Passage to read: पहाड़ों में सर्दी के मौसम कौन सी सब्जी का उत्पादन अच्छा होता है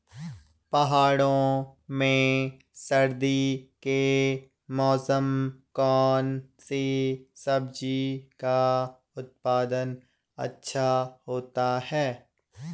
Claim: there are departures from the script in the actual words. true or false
false